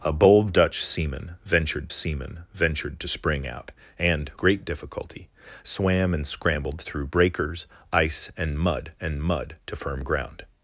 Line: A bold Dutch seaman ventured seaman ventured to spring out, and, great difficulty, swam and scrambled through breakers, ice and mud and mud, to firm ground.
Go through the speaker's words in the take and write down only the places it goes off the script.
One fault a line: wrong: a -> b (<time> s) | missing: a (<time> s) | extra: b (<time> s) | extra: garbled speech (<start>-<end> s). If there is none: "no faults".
no faults